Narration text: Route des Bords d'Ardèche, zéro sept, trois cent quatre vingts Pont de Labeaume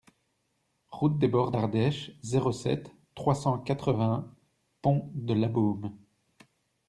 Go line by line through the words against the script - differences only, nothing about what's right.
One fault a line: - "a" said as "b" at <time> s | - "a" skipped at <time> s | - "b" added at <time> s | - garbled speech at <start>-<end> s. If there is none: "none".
none